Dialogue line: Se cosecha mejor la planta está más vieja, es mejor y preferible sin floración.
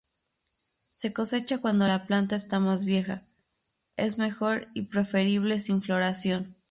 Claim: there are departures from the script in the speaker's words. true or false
true